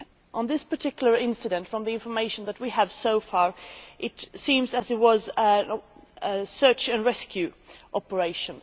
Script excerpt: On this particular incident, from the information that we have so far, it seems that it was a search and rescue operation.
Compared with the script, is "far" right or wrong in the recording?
right